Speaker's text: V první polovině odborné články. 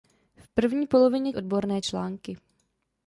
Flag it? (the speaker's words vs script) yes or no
no